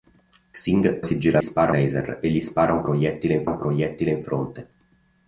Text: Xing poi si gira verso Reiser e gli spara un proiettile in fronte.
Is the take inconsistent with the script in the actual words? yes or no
yes